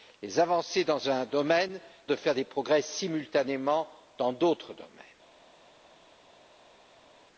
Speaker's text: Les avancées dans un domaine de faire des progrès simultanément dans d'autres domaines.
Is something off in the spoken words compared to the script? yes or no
no